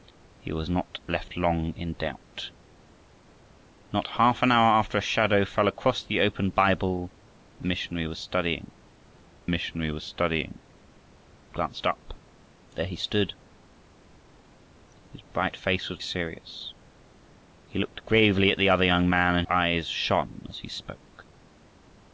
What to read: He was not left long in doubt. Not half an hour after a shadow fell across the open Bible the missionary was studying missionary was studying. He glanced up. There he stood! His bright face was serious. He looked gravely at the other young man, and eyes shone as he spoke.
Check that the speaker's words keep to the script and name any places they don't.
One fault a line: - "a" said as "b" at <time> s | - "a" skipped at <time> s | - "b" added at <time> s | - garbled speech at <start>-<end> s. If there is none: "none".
none